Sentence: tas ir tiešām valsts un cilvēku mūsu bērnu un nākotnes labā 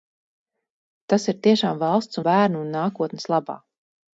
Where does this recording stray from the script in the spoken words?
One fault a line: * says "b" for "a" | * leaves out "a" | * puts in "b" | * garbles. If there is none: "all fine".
* leaves out "un cilvēku mūsu"